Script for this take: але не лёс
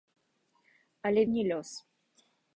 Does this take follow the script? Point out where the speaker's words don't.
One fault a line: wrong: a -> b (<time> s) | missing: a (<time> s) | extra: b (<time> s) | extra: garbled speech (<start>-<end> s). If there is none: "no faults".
no faults